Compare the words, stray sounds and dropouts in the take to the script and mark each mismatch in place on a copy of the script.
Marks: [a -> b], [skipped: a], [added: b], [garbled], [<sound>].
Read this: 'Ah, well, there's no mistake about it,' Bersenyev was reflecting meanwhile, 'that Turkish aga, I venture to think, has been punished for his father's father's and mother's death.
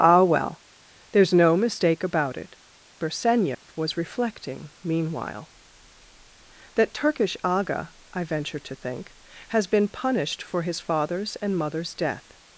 'Ah, well, there's no mistake about it,' Bersenyev [dropout] was reflecting meanwhile, 'that Turkish aga, I venture to think, has been punished for his father's [skipped: father's] and mother's death.